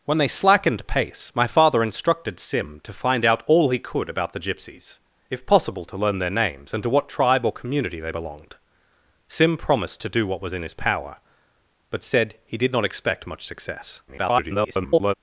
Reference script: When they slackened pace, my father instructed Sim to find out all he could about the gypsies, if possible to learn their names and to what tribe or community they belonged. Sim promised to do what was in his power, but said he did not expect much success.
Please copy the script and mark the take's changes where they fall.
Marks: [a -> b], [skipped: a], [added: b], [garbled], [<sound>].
When they slackened pace, my father instructed Sim to find out all he could about the gypsies, if possible to learn their names and to what tribe or community they belonged. Sim promised to do what was in his power, but said he did not expect much success. [garbled]